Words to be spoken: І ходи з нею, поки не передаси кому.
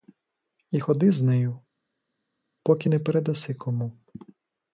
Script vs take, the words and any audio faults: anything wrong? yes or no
no